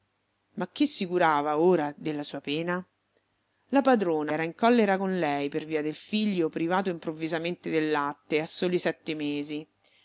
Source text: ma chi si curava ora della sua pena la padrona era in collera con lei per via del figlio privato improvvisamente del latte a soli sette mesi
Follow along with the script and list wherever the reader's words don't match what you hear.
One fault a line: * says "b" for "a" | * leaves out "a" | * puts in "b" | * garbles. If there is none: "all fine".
all fine